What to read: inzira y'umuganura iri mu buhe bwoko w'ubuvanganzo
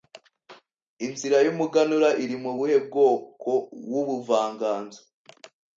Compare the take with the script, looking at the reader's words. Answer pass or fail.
pass